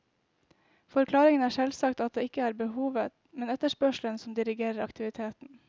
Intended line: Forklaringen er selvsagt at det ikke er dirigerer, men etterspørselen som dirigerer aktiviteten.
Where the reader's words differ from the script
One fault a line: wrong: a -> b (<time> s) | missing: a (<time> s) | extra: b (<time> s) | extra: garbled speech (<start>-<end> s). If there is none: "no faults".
wrong: dirigerer -> behovet (2.5 s)